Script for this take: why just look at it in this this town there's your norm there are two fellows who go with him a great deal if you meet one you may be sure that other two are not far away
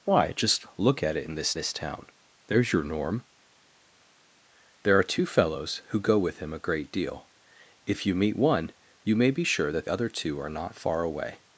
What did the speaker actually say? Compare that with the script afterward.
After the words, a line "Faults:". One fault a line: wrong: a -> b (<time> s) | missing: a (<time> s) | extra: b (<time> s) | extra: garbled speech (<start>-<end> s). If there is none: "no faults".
why just look at it in this this town there's your norm there are two fellows who go with him a great deal if you meet one you may be sure that other two are not far away
Faults:
no faults